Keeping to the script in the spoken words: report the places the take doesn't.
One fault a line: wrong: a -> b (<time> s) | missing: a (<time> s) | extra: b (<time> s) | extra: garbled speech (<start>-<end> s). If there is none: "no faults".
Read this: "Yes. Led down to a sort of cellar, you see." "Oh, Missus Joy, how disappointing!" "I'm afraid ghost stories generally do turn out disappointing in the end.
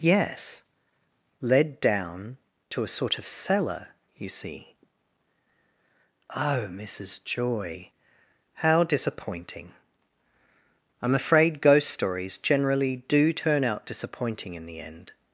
no faults